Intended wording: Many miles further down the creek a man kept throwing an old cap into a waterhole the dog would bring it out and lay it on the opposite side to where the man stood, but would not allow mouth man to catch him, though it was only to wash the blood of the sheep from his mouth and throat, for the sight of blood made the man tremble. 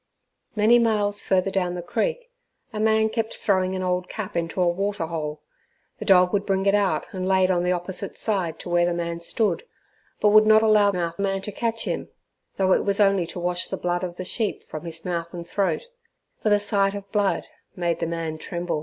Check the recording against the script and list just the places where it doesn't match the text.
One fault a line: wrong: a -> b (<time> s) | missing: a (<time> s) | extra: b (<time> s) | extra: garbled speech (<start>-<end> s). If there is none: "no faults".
no faults